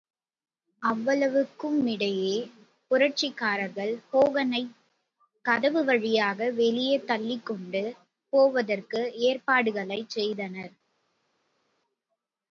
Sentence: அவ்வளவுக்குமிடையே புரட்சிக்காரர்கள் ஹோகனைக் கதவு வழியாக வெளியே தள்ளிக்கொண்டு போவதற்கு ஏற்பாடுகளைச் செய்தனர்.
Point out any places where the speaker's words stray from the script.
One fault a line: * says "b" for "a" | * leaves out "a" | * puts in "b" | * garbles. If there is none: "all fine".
all fine